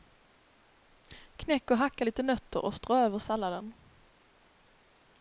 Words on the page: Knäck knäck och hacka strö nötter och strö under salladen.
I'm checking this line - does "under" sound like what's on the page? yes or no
no